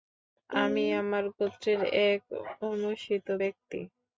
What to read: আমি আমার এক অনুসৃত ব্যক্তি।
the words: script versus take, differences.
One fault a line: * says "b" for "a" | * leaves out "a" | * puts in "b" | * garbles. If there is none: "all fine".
* puts in "গোত্রের"